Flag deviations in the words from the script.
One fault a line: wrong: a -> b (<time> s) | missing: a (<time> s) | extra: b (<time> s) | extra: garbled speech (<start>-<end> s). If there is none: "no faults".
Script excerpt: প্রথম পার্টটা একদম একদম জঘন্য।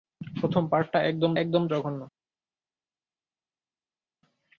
no faults